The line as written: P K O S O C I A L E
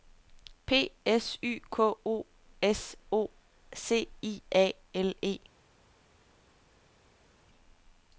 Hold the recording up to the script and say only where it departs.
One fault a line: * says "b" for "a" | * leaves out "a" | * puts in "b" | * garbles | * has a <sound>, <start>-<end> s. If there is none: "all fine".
* puts in "S Y"